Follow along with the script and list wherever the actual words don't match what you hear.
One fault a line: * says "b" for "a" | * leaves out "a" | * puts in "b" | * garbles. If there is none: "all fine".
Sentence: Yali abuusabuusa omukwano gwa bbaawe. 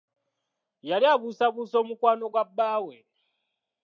all fine